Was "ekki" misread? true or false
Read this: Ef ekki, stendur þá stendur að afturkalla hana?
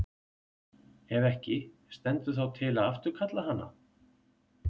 false